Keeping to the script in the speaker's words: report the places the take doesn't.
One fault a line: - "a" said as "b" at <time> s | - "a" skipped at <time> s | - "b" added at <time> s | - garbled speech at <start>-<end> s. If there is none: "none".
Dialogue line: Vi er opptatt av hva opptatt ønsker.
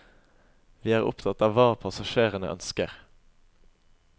- "opptatt" said as "passasjerene" at 1.8 s